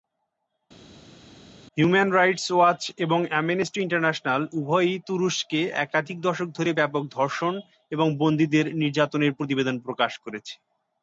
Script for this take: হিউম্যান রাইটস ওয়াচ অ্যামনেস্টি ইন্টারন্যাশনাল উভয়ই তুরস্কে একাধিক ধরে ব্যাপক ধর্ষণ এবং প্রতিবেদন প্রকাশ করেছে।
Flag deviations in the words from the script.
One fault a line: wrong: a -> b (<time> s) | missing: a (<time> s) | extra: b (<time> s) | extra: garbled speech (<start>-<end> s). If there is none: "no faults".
extra: এবং (3.0 s)
extra: দশক (6.2 s)
extra: বন্দীদের নির্যাতনের (8.2 s)